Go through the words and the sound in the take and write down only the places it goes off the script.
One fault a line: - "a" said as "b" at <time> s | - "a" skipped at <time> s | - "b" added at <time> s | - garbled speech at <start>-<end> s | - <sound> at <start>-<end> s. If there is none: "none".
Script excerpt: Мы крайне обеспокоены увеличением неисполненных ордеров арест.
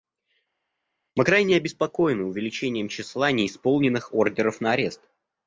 - "числа" added at 2.9 s
- "на" added at 4.6 s